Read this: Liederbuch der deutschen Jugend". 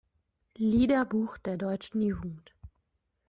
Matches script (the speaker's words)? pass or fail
pass